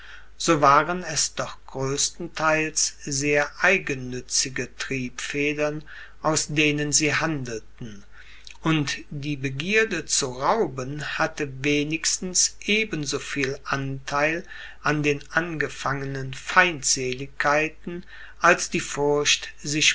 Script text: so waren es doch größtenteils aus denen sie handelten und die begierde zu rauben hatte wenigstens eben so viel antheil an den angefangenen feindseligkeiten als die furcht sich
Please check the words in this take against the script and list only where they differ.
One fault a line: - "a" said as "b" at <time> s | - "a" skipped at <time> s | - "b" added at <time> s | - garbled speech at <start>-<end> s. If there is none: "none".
- "sehr eigennützige triebfedern" added at 3.0 s